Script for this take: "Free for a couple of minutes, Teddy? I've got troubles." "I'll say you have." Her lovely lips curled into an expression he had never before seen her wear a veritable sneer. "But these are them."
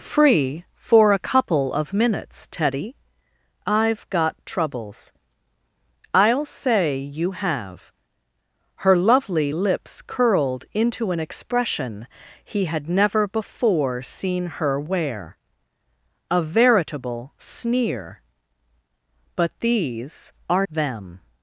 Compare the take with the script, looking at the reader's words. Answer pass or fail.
pass